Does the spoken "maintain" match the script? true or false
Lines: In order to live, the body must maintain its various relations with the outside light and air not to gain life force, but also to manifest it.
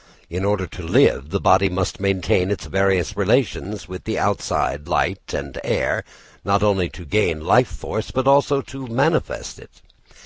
true